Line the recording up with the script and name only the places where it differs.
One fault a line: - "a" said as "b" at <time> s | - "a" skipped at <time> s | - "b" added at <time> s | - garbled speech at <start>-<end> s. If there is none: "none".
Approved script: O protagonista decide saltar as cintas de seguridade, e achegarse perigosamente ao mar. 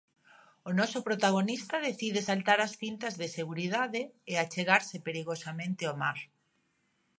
- "noso" added at 0.8 s